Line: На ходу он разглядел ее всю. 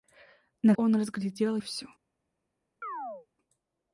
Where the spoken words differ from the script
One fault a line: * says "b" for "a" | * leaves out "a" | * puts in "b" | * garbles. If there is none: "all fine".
* leaves out "ходу"
* leaves out "ее"